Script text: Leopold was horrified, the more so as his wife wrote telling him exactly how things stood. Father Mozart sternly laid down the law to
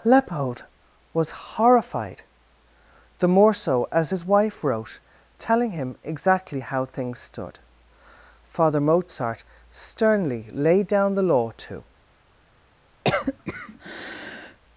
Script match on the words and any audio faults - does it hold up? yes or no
no